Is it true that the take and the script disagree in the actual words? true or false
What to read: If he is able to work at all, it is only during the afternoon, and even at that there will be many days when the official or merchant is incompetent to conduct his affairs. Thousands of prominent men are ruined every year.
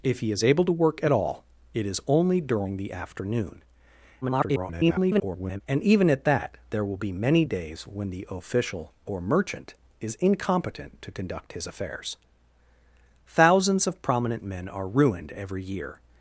true